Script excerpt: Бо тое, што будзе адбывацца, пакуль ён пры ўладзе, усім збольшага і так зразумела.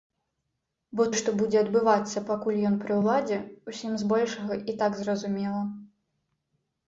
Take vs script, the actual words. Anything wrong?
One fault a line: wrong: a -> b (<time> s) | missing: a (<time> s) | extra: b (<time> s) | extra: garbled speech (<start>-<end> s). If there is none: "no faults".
missing: тое (1.0 s)